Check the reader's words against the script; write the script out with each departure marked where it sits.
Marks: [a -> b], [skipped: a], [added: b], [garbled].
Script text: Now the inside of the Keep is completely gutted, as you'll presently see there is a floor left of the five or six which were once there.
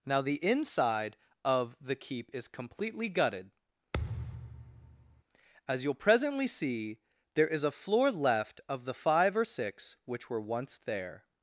Now the inside of the Keep is completely gutted, as you'll presently see there is a floor left of the five or six which were once there.